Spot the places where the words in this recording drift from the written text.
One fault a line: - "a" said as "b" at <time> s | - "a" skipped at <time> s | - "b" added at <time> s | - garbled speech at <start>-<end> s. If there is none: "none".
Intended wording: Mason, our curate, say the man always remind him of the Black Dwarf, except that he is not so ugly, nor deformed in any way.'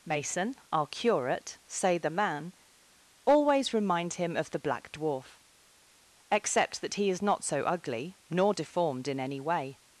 none